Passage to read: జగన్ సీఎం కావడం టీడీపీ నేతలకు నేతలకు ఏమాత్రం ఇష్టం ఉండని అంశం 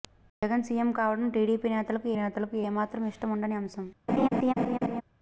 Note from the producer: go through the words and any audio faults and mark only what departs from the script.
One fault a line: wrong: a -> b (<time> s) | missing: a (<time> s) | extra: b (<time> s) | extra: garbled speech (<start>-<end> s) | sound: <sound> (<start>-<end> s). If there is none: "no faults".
sound: laugh (4.1-5.0 s)